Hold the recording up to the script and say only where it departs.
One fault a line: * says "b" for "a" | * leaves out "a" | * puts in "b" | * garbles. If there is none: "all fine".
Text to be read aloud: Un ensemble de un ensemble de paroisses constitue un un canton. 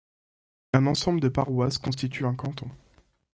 * leaves out "un ensemble de"
* leaves out "un"